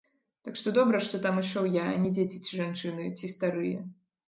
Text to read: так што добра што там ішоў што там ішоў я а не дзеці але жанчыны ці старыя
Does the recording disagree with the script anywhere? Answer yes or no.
yes